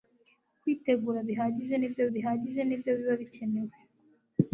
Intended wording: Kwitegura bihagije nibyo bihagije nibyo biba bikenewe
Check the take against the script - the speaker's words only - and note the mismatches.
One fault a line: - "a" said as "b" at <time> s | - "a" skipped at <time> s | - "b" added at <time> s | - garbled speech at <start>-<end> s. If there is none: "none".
none